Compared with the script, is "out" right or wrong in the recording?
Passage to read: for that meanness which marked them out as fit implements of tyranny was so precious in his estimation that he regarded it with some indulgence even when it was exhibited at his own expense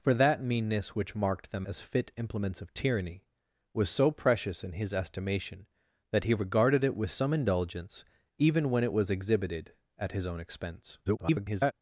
wrong